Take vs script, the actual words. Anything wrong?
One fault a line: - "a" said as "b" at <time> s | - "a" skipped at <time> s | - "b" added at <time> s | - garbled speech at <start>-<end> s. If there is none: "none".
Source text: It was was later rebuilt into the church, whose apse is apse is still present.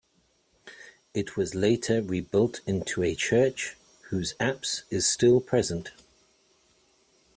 - "was" skipped at 1.5 s
- "the" said as "a" at 3.0 s
- "apse is" skipped at 5.0 s